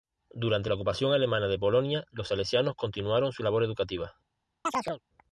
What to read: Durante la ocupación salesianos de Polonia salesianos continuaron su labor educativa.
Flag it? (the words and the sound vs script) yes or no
yes